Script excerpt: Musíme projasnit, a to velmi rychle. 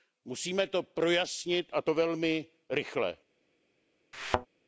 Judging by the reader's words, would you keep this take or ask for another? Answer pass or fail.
fail